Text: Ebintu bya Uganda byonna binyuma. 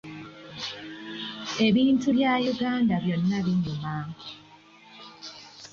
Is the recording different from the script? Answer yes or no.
no